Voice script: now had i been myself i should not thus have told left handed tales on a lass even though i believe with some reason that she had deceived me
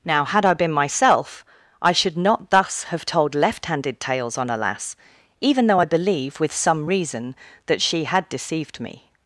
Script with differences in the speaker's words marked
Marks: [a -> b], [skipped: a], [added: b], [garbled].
now had i been myself i should not thus have told left handed tales on a lass even though i believe with some reason that she had deceived me